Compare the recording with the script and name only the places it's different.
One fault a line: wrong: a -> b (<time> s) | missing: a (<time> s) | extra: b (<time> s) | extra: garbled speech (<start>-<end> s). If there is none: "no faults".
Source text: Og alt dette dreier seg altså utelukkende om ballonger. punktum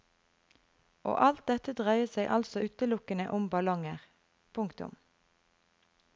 no faults